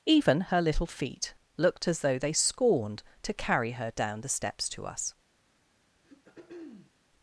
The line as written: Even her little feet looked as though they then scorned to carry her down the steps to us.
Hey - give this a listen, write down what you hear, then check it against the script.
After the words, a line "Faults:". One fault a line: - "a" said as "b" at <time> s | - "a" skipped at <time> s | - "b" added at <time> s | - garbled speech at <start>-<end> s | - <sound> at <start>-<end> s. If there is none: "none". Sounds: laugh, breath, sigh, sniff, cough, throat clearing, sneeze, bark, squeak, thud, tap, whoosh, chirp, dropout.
Even her little feet looked as though they scorned to carry her down the steps to us.
Faults:
- "then" skipped at 2.3 s
- throat clearing at 6.0-6.9 s